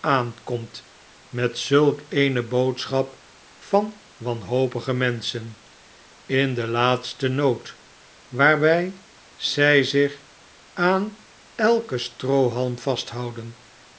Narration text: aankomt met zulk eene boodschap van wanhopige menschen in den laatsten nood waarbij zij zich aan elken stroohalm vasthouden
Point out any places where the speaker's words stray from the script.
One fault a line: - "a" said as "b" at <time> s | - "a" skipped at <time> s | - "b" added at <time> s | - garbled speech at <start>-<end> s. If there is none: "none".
none